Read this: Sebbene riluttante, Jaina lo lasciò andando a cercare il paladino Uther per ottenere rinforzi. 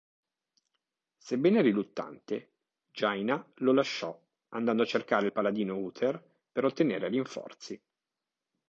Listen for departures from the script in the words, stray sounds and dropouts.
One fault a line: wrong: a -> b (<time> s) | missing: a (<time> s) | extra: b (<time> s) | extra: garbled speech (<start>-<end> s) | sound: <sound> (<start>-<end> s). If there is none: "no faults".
no faults